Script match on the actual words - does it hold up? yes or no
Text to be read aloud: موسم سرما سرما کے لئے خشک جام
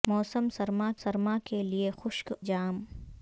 yes